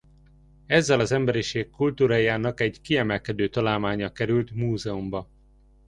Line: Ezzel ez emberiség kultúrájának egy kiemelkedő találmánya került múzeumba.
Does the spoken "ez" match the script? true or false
false